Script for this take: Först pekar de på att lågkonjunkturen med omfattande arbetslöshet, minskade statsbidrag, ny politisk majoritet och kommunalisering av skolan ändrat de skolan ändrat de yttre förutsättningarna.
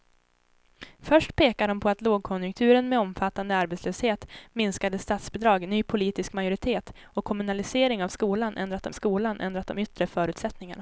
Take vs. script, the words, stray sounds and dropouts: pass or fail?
pass